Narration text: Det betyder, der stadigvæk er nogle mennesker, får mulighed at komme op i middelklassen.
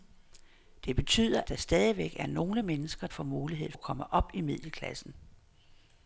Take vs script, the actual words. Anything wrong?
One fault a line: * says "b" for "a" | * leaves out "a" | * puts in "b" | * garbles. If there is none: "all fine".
all fine